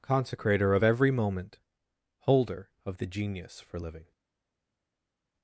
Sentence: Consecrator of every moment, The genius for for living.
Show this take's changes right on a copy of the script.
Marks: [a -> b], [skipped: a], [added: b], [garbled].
Consecrator of every moment, [added: Holder of] The genius for [skipped: for] living.